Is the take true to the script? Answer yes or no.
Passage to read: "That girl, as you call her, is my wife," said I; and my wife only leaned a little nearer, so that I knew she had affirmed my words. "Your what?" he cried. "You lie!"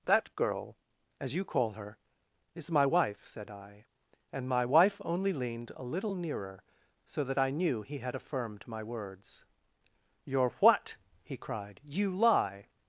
no